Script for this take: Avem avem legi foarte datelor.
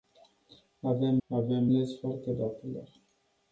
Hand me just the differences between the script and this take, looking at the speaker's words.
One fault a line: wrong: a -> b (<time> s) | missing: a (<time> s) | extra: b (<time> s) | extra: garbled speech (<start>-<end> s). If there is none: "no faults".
no faults